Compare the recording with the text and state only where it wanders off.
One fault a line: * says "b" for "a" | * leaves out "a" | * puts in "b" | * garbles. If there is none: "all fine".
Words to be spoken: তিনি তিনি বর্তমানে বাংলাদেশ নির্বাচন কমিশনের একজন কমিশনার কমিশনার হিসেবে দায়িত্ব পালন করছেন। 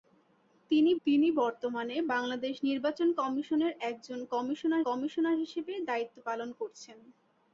all fine